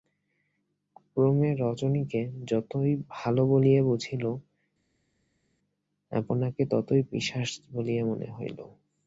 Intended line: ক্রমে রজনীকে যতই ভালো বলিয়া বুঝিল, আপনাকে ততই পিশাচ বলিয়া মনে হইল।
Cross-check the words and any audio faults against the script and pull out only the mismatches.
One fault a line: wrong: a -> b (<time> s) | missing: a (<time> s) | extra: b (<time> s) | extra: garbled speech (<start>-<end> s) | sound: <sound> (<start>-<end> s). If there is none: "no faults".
no faults